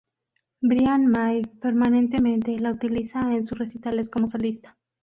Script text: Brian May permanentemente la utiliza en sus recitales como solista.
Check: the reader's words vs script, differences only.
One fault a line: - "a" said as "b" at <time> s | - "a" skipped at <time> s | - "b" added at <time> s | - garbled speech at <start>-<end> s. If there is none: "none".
none